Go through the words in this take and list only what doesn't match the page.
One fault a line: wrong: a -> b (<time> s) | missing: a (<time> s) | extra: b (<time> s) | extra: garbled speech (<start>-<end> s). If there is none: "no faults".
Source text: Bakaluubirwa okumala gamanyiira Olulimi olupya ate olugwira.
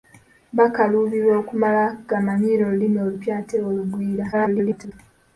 extra: garbled speech (4.3-4.9 s)